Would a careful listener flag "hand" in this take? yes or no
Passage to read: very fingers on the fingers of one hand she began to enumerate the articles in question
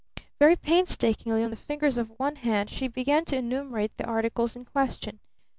no